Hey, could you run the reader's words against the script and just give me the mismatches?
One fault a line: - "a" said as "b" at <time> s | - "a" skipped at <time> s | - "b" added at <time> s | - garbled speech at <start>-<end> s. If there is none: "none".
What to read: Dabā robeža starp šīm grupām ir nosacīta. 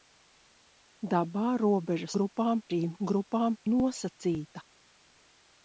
- "starp" said as "grupām" at 2.2 s
- "ir" skipped at 3.6 s